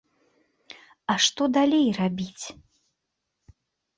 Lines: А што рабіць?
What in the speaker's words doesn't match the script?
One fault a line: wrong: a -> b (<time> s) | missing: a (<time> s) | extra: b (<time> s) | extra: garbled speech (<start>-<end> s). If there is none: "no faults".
extra: далей (1.6 s)